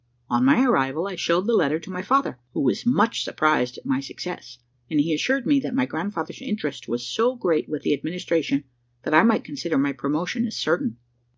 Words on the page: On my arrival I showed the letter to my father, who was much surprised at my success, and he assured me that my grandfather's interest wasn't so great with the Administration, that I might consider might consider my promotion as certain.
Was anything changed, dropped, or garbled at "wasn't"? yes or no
yes